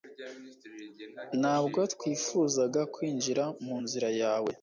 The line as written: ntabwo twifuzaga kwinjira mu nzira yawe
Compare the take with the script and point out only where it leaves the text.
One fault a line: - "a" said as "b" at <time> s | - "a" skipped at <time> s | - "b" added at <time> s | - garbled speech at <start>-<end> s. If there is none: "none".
none